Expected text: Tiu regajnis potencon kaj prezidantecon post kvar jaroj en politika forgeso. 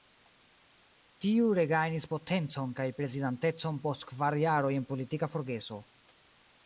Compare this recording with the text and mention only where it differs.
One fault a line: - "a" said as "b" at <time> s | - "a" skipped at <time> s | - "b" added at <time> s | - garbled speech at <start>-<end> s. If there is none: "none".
none